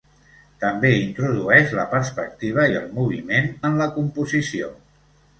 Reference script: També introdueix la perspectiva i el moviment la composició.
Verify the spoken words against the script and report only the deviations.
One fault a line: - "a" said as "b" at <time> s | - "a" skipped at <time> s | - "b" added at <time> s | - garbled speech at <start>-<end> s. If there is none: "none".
- "en" added at 3.7 s